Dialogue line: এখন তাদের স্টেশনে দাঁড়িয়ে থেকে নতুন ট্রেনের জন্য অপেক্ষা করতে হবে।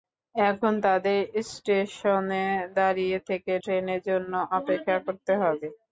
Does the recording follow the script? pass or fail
fail